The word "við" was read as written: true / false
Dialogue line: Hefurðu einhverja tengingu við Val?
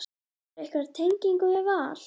true